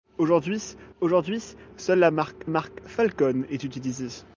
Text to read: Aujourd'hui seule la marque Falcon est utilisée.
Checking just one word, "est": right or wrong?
right